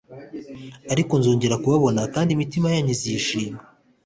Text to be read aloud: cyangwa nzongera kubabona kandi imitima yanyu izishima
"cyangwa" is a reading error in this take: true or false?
true